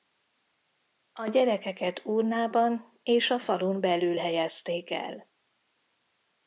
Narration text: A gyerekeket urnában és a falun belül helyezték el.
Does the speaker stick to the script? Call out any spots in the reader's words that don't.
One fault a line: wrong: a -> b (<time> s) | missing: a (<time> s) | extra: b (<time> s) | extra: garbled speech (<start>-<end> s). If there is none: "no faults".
no faults